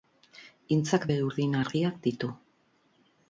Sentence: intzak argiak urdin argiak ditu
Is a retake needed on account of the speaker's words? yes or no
yes